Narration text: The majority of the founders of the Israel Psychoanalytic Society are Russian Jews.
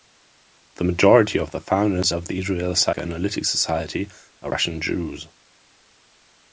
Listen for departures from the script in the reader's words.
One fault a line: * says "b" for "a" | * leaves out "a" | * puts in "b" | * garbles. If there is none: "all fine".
all fine